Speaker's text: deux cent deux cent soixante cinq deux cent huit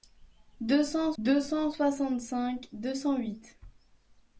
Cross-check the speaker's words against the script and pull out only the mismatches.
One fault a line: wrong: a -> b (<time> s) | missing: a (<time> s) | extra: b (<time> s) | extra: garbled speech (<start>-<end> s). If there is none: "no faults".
no faults